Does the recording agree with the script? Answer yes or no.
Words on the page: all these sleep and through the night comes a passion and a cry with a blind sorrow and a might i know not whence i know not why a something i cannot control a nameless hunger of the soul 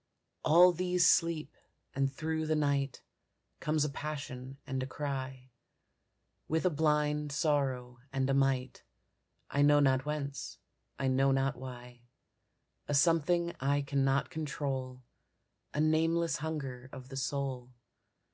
yes